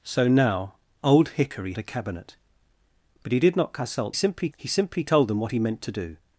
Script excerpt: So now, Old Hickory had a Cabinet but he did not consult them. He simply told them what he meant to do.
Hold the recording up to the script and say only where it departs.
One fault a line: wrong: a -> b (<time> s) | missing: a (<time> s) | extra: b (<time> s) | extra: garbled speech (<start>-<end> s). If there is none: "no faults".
missing: had (1.7 s)
wrong: them -> simply (4.1 s)